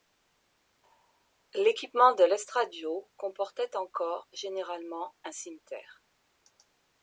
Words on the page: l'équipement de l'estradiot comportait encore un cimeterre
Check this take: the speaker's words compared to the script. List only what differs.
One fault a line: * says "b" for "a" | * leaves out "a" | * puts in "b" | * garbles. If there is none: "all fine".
* puts in "généralement"